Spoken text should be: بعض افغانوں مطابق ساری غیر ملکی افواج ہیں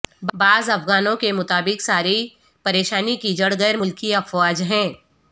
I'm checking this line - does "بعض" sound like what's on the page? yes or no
yes